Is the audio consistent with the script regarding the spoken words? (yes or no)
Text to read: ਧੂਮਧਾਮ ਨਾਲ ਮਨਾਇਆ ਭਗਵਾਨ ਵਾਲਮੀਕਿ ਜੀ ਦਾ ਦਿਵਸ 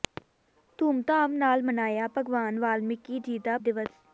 yes